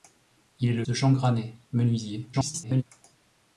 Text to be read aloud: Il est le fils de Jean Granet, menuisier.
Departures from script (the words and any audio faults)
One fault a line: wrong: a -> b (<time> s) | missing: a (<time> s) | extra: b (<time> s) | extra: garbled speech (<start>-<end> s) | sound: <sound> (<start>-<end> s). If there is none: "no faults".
missing: fils (0.8 s)
extra: garbled speech (2.3-2.8 s)